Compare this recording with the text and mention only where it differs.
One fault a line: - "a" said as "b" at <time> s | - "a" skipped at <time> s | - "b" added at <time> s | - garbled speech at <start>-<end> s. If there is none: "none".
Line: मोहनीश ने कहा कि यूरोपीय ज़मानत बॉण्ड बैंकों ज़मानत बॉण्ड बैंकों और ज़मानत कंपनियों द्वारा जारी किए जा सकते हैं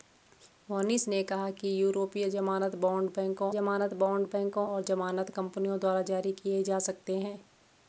none